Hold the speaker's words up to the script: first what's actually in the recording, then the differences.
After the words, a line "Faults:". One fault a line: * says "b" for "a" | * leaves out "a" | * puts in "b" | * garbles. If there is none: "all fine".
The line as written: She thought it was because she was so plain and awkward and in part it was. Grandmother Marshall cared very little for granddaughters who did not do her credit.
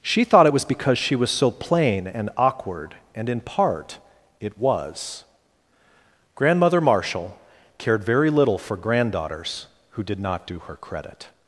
She thought it was because she was so plain and awkward and in part it was. Grandmother Marshall cared very little for granddaughters who did not do her credit.
Faults:
all fine